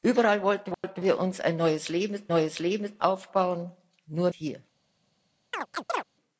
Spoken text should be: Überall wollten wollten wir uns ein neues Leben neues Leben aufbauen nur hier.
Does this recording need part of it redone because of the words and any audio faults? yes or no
yes